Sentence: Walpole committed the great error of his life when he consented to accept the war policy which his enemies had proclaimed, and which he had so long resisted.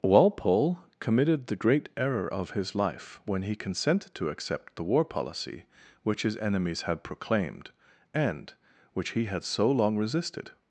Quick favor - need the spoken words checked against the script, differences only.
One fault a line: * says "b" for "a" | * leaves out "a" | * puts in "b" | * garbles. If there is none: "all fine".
all fine